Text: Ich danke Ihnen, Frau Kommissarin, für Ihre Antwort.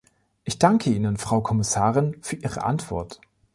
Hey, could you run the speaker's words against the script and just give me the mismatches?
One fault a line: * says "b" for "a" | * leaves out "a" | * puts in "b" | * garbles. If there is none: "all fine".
all fine